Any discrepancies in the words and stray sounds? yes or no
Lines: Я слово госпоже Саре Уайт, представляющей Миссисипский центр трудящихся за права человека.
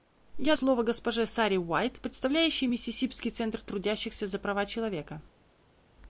no